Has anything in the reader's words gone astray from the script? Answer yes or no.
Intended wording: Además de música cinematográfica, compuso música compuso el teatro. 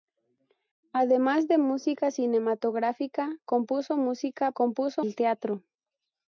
no